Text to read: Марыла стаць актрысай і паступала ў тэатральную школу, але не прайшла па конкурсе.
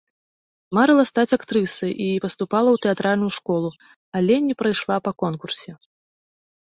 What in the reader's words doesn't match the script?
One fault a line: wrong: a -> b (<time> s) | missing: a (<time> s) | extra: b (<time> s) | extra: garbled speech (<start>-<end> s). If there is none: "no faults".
no faults